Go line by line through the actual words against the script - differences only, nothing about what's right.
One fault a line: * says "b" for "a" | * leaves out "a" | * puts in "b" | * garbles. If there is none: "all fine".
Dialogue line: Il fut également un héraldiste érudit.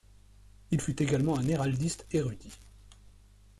all fine